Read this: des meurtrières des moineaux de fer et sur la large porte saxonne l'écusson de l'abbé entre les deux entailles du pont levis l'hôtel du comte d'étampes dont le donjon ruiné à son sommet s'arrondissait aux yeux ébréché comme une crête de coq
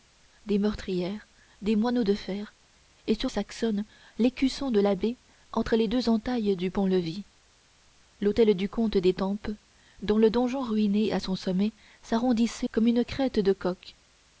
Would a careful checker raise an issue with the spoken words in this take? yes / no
yes